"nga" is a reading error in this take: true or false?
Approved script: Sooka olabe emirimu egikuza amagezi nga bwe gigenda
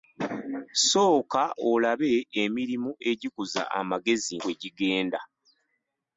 true